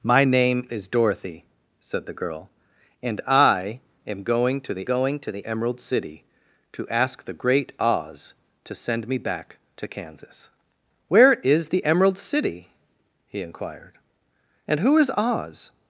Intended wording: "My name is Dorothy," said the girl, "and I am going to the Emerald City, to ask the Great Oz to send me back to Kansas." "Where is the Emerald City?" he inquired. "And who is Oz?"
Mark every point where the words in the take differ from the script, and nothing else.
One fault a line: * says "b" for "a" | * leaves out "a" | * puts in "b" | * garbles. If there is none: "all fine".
* puts in "going to the"